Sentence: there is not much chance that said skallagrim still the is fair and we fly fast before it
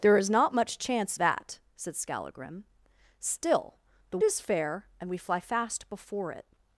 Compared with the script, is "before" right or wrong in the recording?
right